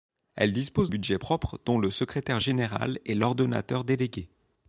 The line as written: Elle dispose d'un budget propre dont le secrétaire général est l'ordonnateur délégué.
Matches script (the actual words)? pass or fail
fail